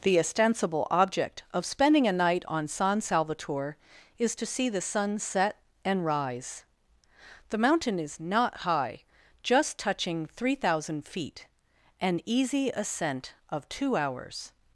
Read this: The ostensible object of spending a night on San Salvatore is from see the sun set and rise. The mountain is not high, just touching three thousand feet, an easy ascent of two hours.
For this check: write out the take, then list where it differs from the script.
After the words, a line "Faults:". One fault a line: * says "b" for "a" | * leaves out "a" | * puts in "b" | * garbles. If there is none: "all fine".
The ostensible object of spending a night on San Salvatore is to see the sun set and rise. The mountain is not high, just touching three thousand feet, an easy ascent of two hours.
Faults:
* says "to" for "from"